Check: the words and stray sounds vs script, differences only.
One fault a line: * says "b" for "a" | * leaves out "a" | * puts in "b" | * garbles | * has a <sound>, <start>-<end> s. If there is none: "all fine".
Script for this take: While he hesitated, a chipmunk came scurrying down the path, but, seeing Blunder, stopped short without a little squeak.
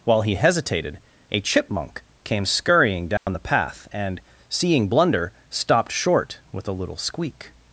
* has a dropout, 3.2-3.3 s
* says "and" for "but"
* says "with" for "without"